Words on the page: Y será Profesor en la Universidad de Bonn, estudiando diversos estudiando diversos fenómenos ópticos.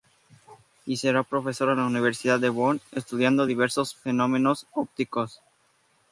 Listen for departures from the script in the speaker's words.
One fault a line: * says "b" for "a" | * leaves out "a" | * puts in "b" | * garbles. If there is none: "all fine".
* leaves out "estudiando diversos"